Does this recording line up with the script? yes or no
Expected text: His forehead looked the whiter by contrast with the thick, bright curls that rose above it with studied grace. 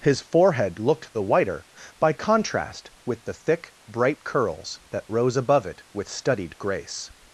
yes